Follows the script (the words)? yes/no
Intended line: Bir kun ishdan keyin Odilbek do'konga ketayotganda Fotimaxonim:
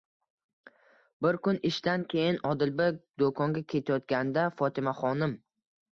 yes